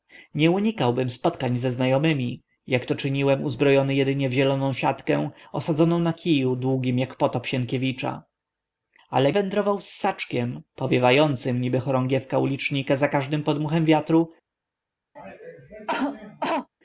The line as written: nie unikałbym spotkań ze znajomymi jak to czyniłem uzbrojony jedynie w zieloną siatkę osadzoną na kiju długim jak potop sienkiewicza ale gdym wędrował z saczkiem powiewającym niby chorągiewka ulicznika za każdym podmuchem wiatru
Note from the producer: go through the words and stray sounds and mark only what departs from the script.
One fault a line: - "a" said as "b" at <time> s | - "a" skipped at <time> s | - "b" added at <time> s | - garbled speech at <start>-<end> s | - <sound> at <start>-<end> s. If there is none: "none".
- "gdym" skipped at 9.3 s
- cough at 15.2-16.7 s